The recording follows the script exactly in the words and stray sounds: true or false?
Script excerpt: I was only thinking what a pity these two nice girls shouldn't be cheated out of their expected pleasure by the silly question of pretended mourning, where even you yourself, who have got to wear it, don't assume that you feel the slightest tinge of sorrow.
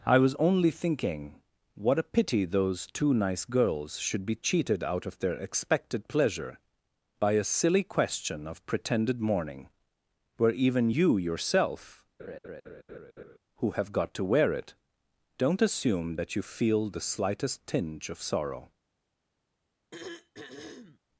false